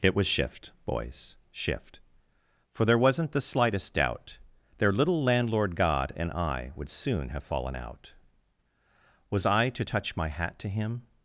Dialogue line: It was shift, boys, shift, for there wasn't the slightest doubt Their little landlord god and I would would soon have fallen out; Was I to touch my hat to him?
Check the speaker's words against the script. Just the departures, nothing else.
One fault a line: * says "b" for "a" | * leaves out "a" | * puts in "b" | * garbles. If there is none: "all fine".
* leaves out "would"